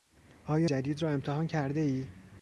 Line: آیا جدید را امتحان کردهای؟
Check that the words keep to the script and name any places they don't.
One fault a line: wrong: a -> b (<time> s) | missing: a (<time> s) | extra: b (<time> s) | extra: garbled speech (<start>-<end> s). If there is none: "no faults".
no faults